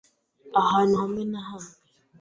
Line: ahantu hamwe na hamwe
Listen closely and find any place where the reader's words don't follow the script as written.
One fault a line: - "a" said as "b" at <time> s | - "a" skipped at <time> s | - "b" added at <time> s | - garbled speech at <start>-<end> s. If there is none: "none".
none